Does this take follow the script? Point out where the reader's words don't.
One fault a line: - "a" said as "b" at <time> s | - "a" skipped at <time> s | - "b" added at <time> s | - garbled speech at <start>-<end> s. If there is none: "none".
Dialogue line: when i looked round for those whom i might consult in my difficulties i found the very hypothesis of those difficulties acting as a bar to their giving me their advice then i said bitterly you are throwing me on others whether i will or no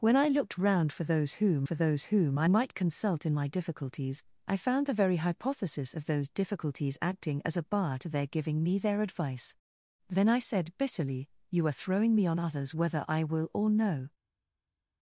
- "for those whom" added at 1.6 s